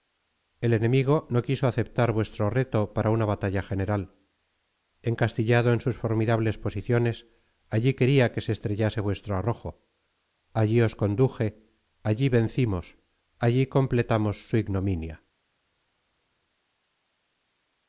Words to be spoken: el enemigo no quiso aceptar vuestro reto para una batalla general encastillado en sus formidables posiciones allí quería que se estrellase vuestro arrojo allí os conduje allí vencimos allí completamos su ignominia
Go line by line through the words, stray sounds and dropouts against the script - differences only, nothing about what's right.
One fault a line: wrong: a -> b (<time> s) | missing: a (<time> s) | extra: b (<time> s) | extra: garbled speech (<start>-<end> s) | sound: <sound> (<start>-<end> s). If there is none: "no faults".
no faults